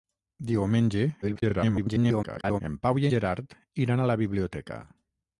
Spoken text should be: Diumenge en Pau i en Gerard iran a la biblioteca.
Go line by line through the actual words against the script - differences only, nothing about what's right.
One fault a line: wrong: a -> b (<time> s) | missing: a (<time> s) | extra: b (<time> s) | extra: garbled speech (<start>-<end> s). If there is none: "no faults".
extra: garbled speech (1.2-2.6 s)
missing: en (3.1 s)